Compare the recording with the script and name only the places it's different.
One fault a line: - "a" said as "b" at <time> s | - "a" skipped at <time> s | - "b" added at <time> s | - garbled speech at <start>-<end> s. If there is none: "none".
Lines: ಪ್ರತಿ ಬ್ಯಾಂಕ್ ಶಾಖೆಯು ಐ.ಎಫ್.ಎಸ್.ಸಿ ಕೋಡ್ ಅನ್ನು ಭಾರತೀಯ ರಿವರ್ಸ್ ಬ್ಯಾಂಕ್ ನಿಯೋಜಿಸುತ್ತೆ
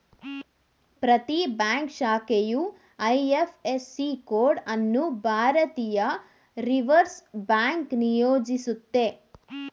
none